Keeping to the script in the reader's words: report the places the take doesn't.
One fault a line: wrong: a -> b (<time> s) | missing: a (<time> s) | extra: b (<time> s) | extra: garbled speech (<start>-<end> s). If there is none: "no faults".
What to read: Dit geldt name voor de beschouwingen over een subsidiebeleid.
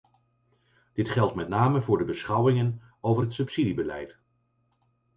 extra: met (1.4 s)
wrong: een -> het (3.2 s)